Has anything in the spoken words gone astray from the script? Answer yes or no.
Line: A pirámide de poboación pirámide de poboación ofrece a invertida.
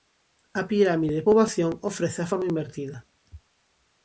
yes